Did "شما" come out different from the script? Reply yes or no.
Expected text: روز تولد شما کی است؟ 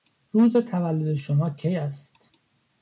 no